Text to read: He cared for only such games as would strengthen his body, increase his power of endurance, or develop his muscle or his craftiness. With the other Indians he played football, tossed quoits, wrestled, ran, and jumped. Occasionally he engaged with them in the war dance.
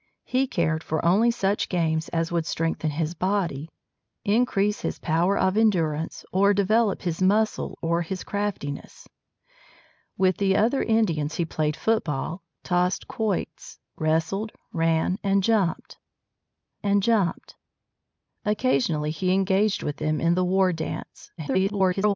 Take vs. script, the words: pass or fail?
fail